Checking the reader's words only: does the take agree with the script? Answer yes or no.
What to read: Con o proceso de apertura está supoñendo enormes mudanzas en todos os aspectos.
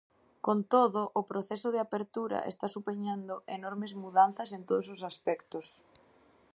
no